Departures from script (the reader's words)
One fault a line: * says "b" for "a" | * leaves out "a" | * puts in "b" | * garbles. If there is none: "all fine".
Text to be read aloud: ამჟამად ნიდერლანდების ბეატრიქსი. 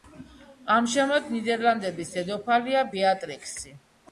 * puts in "დედოფალია"